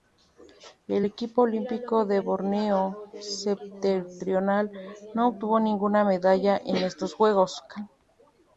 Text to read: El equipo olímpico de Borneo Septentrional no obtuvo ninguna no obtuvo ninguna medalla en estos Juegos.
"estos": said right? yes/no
yes